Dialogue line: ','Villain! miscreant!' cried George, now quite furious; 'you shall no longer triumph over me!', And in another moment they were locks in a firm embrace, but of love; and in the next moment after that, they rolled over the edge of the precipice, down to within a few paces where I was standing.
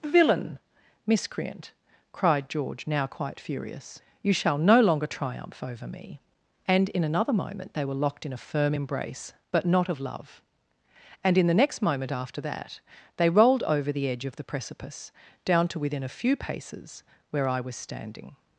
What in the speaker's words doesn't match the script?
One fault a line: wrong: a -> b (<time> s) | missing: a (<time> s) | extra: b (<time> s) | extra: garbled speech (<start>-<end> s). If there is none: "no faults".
wrong: locks -> locked (7.9 s)
extra: not (9.7 s)